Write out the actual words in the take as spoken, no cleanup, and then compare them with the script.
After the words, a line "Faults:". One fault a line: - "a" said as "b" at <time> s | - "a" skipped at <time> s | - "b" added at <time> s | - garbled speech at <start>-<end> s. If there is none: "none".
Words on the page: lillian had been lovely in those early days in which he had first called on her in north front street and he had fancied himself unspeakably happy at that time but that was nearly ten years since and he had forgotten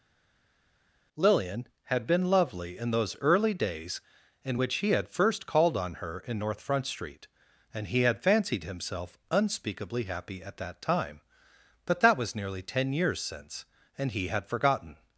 lillian had been lovely in those early days in which he had first called on her in north front street and he had fancied himself unspeakably happy at that time but that was nearly ten years since and he had forgotten
Faults:
none